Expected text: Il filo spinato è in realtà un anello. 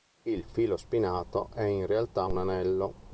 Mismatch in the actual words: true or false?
false